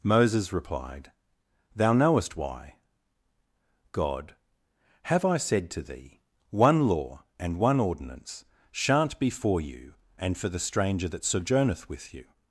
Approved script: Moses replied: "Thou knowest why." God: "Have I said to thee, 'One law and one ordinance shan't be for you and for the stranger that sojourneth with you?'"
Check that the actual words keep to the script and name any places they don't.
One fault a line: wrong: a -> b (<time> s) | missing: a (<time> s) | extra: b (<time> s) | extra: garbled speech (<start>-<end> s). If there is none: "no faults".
no faults